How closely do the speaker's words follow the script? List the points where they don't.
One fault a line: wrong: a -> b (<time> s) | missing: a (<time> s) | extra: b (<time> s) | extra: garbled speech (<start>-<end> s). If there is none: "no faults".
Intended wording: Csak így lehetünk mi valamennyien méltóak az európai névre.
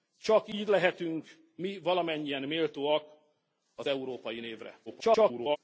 extra: garbled speech (4.9-5.6 s)